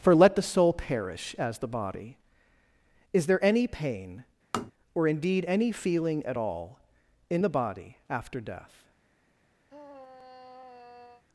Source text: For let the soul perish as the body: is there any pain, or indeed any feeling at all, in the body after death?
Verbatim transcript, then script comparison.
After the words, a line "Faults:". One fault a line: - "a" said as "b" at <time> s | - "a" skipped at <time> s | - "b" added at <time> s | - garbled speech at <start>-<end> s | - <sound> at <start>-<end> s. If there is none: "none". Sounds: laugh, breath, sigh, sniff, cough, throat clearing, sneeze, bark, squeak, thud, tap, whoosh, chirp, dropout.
For let the soul perish as the body: is there any pain, or indeed any feeling at all, in the body after death?
Faults:
- tap at 4.5-4.7 s
- sigh at 9.7-11.2 s